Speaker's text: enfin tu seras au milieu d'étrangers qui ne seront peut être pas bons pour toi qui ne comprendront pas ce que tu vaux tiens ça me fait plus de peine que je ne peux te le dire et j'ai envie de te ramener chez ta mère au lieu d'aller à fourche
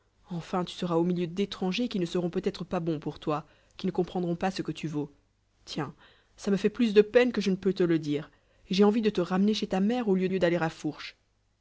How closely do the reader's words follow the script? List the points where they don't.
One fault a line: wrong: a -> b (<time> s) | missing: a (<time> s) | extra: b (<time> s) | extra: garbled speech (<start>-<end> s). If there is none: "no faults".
extra: lieu (10.3 s)